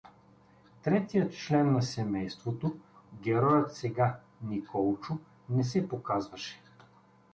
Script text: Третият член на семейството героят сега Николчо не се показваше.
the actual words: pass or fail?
pass